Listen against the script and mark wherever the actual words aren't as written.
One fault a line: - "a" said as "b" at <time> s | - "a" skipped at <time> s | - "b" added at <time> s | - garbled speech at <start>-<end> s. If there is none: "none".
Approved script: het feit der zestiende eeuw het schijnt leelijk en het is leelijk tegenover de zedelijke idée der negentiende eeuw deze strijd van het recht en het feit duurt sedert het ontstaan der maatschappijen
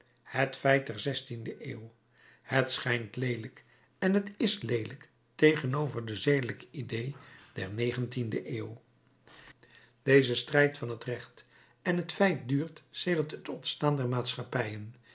none